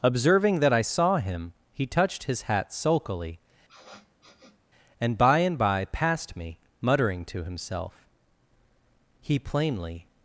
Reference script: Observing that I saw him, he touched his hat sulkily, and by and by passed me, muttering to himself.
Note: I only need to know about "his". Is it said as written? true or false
true